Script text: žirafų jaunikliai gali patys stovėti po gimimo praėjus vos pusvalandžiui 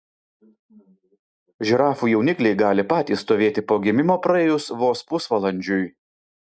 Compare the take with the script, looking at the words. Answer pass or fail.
pass